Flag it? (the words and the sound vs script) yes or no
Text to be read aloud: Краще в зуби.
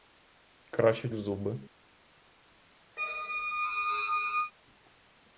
yes